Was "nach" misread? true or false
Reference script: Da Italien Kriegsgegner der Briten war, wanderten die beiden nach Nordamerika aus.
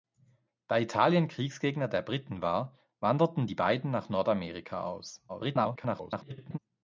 false